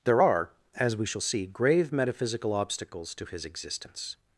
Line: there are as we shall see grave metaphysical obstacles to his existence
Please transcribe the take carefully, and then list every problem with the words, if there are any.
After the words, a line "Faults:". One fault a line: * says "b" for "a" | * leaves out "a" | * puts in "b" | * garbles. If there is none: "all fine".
there are as we shall see grave metaphysical obstacles to his existence
Faults:
all fine